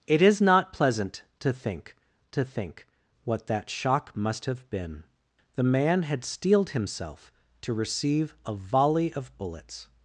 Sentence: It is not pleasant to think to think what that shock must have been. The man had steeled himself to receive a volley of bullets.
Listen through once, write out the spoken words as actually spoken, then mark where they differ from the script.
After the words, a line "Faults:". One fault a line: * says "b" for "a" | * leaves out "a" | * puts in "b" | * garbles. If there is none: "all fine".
It is not pleasant to think to think what that shock must have been. The man had steeled himself to receive a volley of bullets.
Faults:
all fine